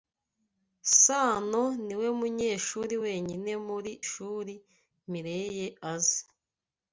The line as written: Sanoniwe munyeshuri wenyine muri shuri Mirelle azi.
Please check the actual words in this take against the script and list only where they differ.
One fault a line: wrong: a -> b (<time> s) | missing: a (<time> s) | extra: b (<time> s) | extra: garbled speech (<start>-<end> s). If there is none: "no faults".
no faults